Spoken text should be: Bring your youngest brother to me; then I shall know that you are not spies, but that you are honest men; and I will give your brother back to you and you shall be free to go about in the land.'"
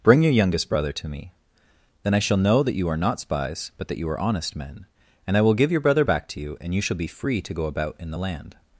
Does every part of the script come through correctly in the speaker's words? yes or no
yes